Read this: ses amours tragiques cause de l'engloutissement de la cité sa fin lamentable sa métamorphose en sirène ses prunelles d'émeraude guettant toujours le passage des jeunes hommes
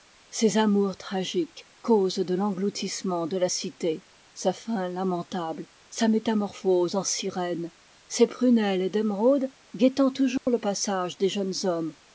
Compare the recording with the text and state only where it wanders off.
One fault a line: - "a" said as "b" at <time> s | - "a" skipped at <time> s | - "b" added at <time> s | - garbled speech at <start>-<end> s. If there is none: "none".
none